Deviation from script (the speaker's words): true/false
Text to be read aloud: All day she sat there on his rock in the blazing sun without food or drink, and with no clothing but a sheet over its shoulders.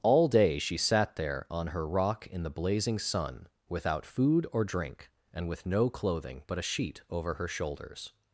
true